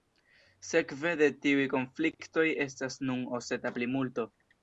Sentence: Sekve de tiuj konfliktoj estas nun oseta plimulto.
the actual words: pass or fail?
pass